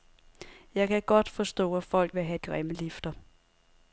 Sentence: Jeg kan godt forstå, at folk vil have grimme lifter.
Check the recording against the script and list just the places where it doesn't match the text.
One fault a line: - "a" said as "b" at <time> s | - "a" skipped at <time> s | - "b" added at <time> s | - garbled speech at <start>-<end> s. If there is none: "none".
none